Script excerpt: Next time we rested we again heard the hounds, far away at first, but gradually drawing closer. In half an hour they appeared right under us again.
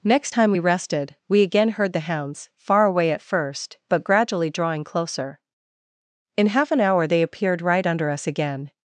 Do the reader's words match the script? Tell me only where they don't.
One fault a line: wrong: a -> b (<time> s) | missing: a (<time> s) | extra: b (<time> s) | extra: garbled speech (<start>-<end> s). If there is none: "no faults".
no faults